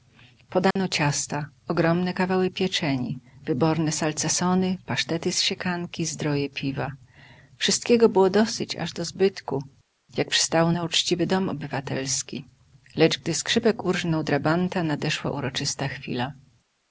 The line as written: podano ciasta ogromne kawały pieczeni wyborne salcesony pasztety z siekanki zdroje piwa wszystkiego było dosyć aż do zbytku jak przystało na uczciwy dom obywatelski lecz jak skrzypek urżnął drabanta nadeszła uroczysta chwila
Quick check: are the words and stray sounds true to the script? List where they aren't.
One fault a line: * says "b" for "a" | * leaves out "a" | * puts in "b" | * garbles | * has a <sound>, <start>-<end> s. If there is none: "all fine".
* has a dropout, 0.7-0.8 s
* says "gdy" for "jak"